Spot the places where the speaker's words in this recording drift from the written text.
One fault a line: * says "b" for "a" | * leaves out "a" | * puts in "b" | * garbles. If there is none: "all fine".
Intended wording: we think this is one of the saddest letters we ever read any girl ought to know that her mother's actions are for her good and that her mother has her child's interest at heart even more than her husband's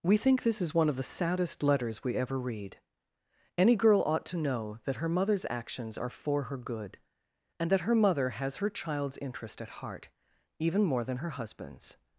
all fine